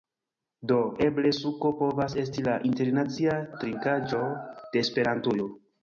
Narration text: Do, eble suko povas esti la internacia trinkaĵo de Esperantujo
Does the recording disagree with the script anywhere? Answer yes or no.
no